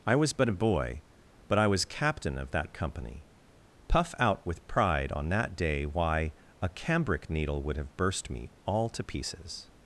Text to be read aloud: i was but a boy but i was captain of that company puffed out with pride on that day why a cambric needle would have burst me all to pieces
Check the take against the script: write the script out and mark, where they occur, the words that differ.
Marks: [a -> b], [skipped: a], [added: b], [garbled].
i was but a boy but i was captain of that company [puffed -> puff] out with pride on that day why a cambric needle would have burst me all to pieces